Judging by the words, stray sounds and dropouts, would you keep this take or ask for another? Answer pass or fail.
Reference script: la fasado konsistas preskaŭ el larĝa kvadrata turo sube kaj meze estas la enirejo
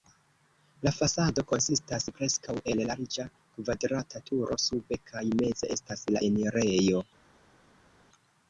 pass